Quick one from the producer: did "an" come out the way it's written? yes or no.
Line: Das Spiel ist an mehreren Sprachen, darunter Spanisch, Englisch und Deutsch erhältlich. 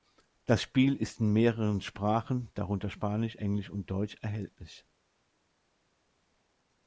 no